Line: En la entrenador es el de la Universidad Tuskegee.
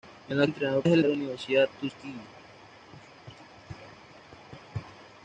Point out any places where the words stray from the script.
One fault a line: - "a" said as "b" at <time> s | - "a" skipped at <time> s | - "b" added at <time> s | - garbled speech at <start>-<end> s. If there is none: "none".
none